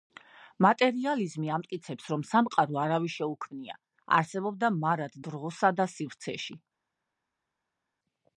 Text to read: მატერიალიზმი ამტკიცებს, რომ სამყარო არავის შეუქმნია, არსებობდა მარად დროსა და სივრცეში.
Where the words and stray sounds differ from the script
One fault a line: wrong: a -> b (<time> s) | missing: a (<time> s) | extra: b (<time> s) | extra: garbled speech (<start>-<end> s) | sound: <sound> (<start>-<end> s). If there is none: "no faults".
no faults